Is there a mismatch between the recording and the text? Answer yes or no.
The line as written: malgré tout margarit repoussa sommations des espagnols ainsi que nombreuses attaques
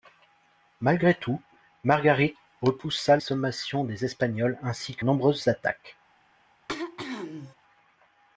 no